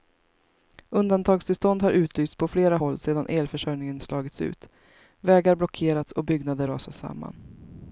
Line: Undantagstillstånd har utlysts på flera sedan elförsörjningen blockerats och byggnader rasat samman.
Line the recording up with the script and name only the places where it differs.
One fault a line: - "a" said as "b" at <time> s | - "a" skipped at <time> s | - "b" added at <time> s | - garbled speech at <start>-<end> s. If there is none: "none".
- "håll" added at 2.8 s
- "slagits ut vägar" added at 4.0 s